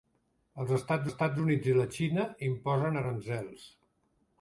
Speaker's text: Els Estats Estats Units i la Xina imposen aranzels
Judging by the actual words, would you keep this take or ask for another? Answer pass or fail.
pass